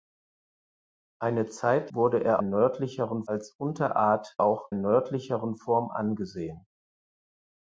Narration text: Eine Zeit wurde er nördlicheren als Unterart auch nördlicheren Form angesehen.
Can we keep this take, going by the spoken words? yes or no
yes